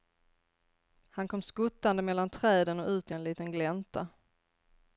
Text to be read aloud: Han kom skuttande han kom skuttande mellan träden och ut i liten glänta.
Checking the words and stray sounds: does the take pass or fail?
fail